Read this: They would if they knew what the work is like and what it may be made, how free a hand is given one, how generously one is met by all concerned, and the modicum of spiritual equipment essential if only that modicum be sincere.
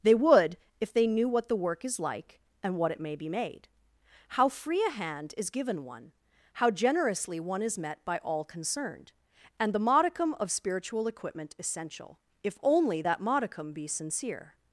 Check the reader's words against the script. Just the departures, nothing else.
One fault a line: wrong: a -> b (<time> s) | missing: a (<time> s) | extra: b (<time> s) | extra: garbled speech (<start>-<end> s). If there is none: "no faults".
no faults